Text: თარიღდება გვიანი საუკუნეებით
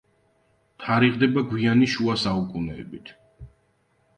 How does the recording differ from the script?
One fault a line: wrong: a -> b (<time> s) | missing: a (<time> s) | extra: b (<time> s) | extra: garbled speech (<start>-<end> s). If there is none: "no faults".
extra: შუა (1.9 s)